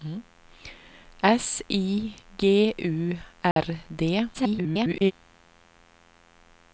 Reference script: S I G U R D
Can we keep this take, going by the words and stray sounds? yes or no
no